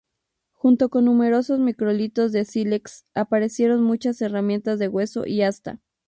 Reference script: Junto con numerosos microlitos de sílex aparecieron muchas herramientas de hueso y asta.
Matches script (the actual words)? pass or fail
pass